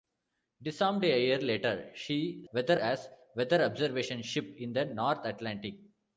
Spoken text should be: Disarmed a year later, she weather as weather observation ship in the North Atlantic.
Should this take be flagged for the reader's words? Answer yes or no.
no